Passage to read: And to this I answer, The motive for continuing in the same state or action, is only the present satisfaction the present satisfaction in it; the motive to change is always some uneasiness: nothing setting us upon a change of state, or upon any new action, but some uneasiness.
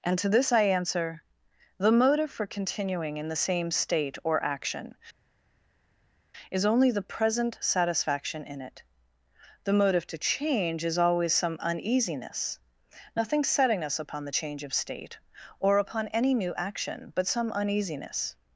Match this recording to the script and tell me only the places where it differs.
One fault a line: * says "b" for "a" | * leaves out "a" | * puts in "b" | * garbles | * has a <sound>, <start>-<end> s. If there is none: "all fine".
* leaves out "the present satisfaction"
* says "the" for "a"